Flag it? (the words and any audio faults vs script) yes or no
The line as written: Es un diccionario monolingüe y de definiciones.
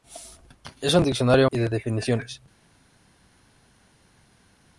yes